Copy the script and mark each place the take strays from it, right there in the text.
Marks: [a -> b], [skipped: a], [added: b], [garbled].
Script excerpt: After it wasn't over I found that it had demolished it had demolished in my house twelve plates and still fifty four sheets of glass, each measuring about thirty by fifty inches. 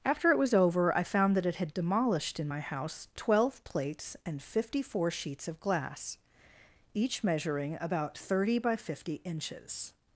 After it [wasn't -> was] over I found that it had demolished [skipped: it had demolished] in my house twelve plates and [skipped: still] fifty four sheets of glass, each measuring about thirty by fifty inches.